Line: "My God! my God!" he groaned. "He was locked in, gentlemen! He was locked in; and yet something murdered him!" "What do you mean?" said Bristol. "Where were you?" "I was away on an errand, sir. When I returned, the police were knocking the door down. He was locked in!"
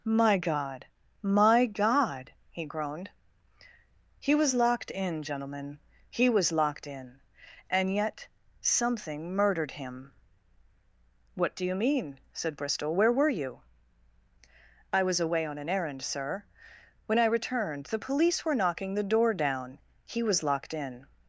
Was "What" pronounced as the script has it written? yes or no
yes